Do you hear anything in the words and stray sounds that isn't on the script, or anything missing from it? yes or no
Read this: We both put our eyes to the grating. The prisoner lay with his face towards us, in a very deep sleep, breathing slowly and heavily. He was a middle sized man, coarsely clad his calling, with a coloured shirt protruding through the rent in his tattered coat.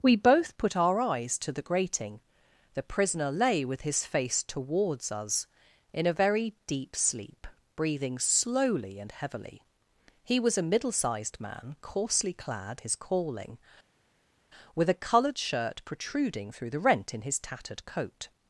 no